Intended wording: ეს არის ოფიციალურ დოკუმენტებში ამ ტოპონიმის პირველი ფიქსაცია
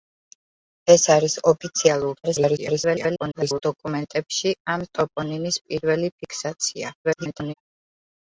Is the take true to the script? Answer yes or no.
no